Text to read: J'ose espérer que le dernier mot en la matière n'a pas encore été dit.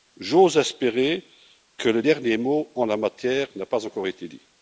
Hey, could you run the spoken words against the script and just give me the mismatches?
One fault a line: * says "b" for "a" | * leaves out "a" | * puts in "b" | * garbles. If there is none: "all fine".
all fine